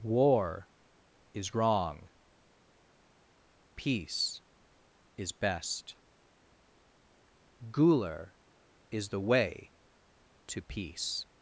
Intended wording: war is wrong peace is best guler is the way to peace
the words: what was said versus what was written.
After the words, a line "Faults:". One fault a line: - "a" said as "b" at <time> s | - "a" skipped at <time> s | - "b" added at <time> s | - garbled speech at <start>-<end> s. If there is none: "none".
war is wrong peace is best guler is the way to peace
Faults:
none